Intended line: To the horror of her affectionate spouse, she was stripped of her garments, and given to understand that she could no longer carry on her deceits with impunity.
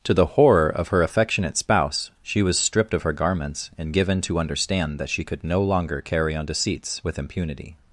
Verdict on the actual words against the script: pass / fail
fail